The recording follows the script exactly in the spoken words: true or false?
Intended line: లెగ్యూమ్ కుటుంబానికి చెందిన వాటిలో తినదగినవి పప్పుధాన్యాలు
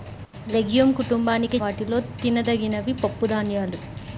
false